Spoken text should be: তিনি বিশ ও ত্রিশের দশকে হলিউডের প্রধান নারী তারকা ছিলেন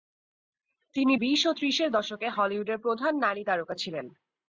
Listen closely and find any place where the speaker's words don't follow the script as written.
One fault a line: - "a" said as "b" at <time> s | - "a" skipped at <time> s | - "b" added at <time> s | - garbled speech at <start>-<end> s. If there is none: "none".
none